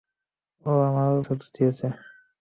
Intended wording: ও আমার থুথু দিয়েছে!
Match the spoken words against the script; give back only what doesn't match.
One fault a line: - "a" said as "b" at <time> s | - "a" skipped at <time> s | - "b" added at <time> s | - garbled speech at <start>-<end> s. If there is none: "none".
none